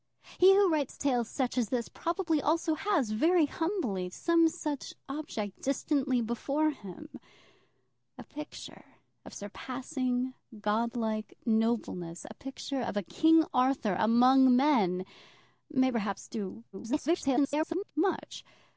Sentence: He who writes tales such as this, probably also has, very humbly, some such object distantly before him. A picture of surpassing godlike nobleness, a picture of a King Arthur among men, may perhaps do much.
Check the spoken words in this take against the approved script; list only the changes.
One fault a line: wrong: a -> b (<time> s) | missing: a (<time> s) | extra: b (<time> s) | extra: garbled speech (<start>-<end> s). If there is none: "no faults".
extra: garbled speech (16.7-17.9 s)